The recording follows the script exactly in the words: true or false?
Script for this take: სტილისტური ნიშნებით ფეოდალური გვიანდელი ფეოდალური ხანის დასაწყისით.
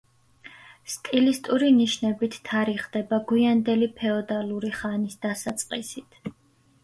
false